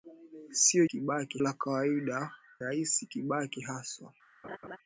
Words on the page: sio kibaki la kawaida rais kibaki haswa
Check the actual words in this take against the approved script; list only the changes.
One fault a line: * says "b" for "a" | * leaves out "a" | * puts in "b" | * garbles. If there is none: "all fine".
all fine